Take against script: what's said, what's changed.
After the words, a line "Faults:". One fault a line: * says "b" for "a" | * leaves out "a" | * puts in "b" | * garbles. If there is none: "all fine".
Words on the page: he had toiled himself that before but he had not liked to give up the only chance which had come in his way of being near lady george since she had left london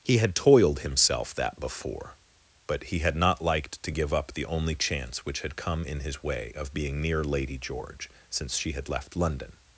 he had toiled himself that before but he had not liked to give up the only chance which had come in his way of being near lady george since she had left london
Faults:
all fine